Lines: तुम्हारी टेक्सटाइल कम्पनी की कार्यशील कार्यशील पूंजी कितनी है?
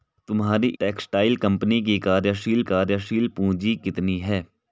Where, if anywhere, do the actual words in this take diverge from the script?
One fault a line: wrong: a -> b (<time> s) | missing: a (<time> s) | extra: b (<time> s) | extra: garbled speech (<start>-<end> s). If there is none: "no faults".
no faults